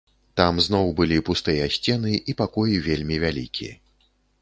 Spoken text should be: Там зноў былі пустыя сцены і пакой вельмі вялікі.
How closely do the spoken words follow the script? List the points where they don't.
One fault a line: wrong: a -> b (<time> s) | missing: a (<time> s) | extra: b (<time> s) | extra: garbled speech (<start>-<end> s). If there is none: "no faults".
no faults